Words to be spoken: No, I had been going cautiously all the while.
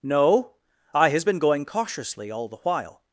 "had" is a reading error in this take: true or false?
true